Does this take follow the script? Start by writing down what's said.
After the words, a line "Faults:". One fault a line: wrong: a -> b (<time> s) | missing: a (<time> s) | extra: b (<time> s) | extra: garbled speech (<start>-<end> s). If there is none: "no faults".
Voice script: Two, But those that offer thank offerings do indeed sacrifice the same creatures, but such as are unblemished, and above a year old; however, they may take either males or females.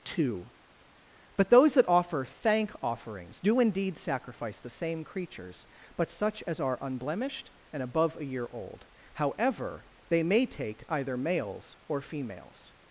Two, But those that offer thank offerings do indeed sacrifice the same creatures, but such as are unblemished, and above a year old; however, they may take either males or females.
Faults:
no faults